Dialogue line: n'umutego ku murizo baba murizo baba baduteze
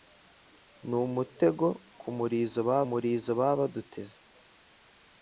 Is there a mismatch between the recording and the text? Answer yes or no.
no